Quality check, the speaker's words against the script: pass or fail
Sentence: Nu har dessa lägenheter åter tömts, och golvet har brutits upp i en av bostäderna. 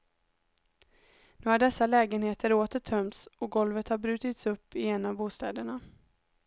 pass